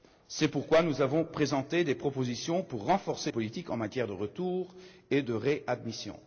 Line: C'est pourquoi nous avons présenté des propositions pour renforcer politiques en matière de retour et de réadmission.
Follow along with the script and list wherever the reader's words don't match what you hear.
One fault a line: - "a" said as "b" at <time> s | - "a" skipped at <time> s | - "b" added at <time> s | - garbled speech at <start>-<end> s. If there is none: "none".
none